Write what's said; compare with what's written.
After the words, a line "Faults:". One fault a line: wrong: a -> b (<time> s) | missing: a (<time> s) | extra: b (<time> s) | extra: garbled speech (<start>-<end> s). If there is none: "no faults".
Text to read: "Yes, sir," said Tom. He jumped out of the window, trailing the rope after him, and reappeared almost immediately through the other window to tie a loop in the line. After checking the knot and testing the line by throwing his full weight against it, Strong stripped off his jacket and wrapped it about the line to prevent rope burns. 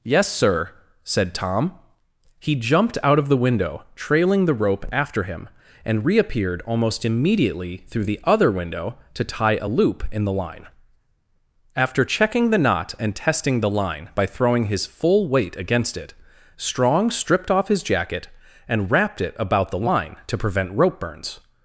"Yes, sir," said Tom. He jumped out of the window, trailing the rope after him, and reappeared almost immediately through the other window to tie a loop in the line. After checking the knot and testing the line by throwing his full weight against it, Strong stripped off his jacket and wrapped it about the line to prevent rope burns.
Faults:
no faults